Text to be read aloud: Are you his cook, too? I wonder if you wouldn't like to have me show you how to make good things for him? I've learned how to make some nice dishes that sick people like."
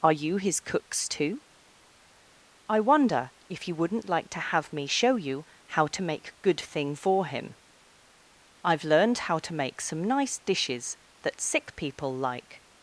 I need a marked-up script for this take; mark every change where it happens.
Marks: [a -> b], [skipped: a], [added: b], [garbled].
Are you his [cook, -> cooks] too? I wonder if you wouldn't like to have me show you how to make good [things -> thing] for him? I've learned how to make some nice dishes that sick people like."